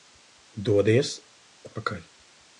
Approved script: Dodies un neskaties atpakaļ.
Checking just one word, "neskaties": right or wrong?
wrong